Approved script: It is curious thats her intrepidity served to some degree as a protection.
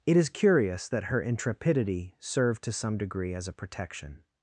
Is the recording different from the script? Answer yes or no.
yes